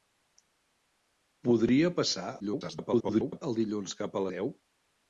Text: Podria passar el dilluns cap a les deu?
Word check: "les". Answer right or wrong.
wrong